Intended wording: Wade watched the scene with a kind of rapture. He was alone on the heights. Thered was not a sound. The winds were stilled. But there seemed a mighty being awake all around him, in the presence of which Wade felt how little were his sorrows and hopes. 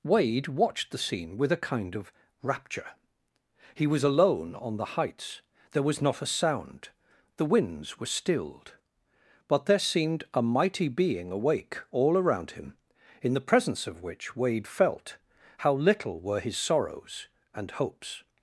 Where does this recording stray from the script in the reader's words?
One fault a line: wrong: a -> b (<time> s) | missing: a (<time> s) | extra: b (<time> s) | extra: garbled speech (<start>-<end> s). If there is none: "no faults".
wrong: Thered -> There (5.7 s)